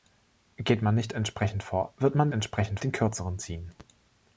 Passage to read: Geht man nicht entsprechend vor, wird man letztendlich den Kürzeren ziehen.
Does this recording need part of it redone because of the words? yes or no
yes